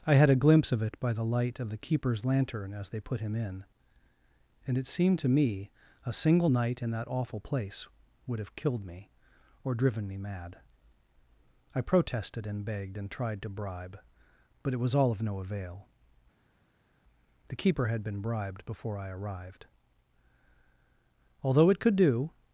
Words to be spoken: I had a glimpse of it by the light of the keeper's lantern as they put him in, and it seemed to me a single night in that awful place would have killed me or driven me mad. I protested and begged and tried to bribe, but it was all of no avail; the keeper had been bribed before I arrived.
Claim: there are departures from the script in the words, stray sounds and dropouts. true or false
true